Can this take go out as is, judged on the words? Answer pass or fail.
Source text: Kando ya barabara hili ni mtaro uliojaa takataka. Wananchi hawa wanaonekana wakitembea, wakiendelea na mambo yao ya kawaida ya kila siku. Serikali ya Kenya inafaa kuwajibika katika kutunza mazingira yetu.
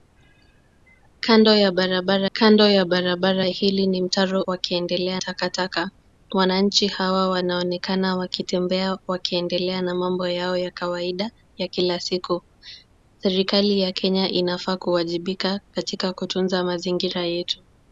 fail